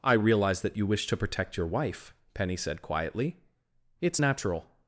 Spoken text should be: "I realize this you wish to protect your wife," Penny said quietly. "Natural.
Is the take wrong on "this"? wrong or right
wrong